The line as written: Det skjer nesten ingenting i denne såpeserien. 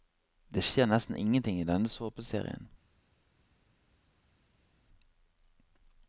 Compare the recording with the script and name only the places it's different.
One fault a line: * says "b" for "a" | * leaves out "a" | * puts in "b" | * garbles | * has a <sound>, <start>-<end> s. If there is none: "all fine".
all fine